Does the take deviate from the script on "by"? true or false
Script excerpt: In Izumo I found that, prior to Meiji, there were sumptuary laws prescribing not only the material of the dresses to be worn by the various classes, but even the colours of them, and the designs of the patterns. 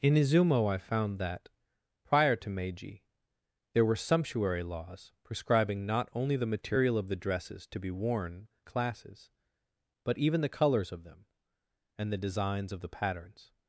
true